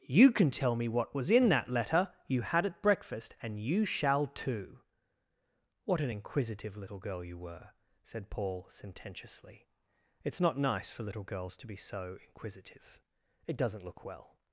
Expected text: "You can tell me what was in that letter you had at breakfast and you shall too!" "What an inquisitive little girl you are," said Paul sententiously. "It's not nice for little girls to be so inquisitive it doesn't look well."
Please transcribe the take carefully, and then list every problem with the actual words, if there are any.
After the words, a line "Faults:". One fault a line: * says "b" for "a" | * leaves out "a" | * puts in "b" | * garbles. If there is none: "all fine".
"You can tell me what was in that letter you had at breakfast and you shall too!" "What an inquisitive little girl you were," said Paul sententiously. "It's not nice for little girls to be so inquisitive it doesn't look well."
Faults:
* says "were" for "are"